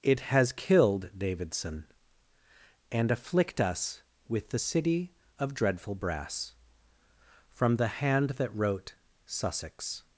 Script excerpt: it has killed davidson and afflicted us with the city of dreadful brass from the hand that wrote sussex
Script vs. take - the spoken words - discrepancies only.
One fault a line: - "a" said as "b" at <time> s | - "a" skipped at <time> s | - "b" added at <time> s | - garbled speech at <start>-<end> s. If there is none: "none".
- "afflicted" said as "afflict" at 3.1 s